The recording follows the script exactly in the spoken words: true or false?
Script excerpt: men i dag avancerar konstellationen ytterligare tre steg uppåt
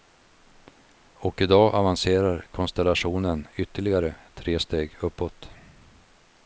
false